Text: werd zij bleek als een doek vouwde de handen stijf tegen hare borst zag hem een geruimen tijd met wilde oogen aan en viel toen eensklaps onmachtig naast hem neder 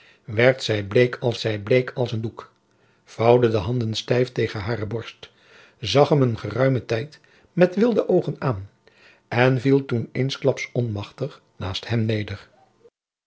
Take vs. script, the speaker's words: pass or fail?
fail